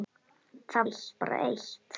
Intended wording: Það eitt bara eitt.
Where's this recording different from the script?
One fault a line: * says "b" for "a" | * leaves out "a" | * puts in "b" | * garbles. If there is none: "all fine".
all fine